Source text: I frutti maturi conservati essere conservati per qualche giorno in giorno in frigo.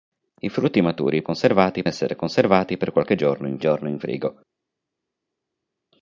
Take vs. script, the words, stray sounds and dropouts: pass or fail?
pass